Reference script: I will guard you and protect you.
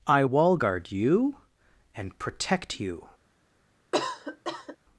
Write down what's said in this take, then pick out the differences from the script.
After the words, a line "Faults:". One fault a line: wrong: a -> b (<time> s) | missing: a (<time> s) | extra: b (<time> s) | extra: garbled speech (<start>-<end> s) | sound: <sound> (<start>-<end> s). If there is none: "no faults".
I wall guard you and protect you.
Faults:
wrong: will -> wall (0.2 s)
sound: cough (3.9-4.8 s)